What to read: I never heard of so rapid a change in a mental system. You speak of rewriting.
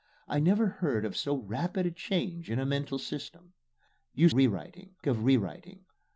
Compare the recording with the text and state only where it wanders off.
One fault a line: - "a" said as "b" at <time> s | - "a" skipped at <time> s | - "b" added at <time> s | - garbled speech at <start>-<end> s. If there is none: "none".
- "speak" said as "rewriting" at 4.3 s